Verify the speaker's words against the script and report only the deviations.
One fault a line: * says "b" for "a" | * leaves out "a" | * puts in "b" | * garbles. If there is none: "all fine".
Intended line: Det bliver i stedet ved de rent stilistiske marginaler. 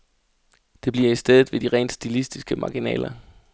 all fine